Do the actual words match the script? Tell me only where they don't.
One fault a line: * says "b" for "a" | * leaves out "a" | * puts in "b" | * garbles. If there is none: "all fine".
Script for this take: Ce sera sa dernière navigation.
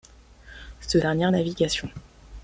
* leaves out "sera sa"